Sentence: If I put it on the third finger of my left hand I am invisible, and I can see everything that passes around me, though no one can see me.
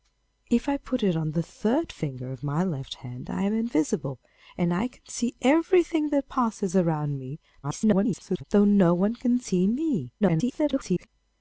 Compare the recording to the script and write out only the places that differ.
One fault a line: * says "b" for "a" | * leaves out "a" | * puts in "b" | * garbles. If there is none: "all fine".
* garbles
* garbles